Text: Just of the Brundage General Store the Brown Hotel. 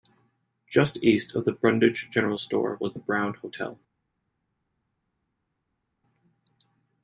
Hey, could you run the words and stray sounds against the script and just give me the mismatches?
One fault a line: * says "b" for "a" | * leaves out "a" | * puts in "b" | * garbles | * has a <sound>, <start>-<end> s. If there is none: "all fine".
* puts in "east"
* puts in "was"